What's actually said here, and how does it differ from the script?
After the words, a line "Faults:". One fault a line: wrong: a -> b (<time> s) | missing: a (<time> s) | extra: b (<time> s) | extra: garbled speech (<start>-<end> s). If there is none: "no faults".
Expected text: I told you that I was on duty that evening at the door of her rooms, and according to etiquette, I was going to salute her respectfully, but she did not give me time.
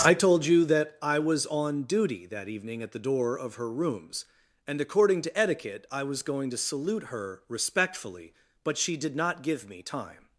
I told you that I was on duty that evening at the door of her rooms, and according to etiquette, I was going to salute her respectfully, but she did not give me time.
Faults:
no faults